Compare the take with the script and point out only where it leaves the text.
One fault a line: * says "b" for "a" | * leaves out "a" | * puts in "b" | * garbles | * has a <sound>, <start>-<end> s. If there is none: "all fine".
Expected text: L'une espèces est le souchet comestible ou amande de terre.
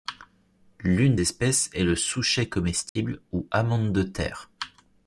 * has a dropout, 2.9-3.0 s